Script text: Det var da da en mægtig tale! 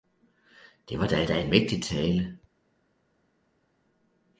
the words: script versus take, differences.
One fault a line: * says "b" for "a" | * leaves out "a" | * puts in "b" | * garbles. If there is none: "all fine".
all fine